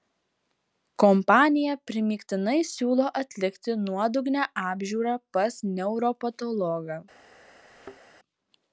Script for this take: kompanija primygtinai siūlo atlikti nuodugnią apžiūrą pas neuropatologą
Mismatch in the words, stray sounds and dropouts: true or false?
true